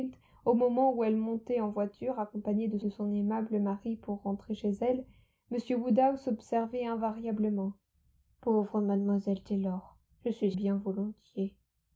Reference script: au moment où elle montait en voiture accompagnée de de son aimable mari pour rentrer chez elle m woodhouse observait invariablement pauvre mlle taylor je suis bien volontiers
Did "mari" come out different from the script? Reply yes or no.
no